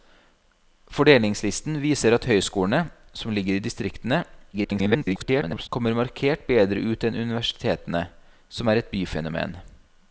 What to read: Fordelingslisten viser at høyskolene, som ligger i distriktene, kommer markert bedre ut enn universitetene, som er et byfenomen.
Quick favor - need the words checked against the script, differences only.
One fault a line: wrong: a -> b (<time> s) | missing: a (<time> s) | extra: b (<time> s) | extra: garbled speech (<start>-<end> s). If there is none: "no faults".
extra: garbled speech (4.5-5.7 s)